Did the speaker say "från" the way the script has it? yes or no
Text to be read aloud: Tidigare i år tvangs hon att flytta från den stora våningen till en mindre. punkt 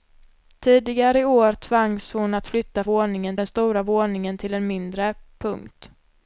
no